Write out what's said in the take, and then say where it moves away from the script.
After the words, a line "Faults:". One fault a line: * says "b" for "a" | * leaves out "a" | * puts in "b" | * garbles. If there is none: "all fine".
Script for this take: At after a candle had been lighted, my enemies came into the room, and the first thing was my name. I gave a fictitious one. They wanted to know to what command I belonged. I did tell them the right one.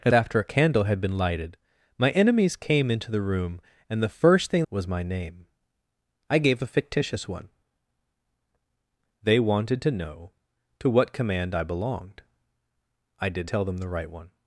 At after a candle had been lighted, my enemies came into the room, and the first thing was my name. I gave a fictitious one. They wanted to know to what command I belonged. I did tell them the right one.
Faults:
all fine